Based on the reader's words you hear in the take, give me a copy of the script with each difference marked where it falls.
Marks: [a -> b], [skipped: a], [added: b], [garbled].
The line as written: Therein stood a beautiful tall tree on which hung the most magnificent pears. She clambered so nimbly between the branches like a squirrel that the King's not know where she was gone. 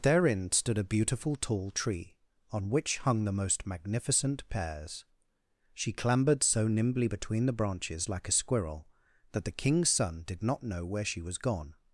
Therein stood a beautiful tall tree on which hung the most magnificent pears. She clambered so nimbly between the branches like a squirrel that the King's [added: son did] not know where she was gone.